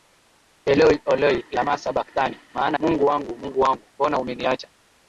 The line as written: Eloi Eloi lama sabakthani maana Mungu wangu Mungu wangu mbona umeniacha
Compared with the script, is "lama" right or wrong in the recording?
right